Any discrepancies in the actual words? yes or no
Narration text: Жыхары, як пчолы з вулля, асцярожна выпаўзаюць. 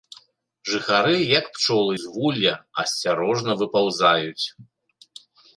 no